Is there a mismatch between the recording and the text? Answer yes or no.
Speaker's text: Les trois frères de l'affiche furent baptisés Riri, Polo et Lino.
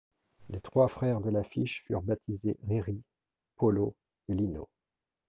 no